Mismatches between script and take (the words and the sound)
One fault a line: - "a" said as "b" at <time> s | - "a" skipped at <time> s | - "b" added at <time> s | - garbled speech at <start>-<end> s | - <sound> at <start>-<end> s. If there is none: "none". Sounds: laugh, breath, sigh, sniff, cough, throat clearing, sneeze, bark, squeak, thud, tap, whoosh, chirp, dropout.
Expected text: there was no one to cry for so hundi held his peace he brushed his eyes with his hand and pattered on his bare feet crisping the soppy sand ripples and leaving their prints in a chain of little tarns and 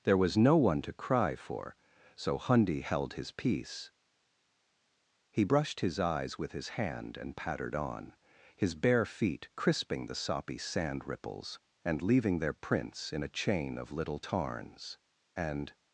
none